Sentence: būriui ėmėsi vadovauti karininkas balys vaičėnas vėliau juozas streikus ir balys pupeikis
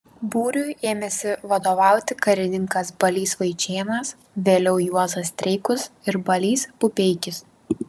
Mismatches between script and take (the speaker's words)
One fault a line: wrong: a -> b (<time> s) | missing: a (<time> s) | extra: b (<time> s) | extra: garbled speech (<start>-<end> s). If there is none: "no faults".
no faults